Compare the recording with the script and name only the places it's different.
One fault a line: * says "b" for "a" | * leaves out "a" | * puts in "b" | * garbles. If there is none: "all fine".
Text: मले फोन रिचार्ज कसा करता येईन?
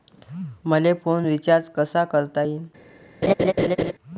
all fine